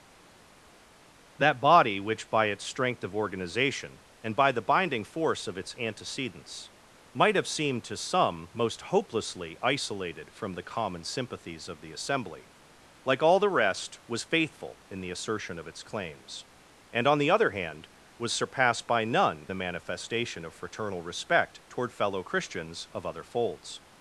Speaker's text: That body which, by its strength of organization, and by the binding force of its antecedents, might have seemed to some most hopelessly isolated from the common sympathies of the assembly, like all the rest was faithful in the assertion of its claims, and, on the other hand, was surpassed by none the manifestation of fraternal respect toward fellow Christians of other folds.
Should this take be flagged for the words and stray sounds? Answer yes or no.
no